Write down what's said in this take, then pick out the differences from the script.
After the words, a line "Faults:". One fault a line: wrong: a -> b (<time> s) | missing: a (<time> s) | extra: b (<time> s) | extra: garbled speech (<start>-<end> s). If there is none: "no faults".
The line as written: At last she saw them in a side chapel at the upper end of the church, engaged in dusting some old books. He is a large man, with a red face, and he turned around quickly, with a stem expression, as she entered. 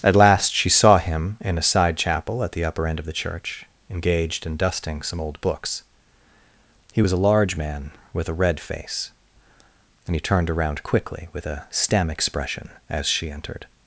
At last she saw him in a side chapel at the upper end of the church, engaged in dusting some old books. He was a large man, with a red face, and he turned around quickly, with a stem expression, as she entered.
Faults:
wrong: them -> him (1.0 s)
wrong: is -> was (7.0 s)